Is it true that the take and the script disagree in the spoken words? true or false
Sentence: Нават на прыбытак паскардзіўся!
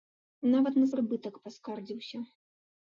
false